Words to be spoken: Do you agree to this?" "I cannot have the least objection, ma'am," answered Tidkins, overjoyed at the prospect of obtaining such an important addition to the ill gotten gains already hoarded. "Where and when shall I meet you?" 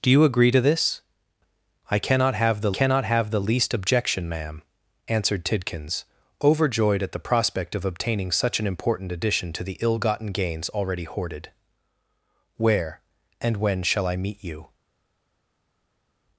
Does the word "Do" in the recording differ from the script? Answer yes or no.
no